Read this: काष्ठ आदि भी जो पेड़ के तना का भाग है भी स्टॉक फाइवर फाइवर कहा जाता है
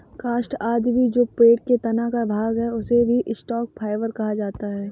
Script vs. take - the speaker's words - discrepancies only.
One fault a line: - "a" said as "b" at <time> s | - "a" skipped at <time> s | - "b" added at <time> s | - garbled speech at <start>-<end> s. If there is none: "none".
- "उसे" added at 2.7 s
- "फाइवर" skipped at 4.1 s